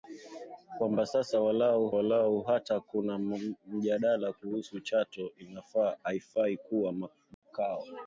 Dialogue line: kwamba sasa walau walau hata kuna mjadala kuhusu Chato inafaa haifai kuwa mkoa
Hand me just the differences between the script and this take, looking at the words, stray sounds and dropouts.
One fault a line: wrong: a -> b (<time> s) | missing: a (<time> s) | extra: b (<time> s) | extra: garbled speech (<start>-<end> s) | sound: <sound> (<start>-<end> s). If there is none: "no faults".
sound: dropout (7.3-7.4 s)